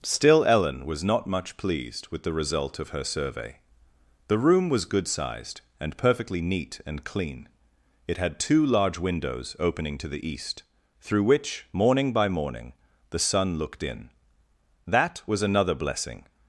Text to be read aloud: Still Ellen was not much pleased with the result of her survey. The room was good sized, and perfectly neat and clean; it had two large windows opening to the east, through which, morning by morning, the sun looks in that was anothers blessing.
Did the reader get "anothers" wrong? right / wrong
wrong